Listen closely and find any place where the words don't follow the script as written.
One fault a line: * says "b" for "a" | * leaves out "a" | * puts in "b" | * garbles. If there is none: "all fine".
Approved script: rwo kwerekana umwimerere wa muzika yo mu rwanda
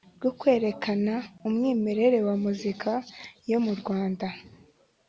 all fine